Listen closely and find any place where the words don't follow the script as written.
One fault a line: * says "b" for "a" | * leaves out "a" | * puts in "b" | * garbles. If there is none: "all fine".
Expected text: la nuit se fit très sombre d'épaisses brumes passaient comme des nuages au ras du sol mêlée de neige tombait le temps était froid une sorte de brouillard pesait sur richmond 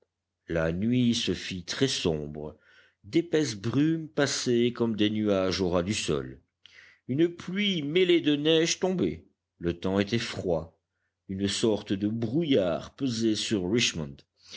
* puts in "une pluie"